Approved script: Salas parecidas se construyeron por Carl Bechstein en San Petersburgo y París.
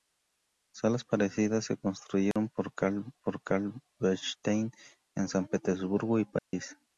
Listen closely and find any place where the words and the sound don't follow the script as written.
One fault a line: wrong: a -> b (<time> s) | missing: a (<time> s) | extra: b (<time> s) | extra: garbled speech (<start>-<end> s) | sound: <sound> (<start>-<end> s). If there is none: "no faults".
sound: dropout (2.3-2.4 s)
extra: por Carl (3.2 s)
sound: dropout (6.4-6.5 s)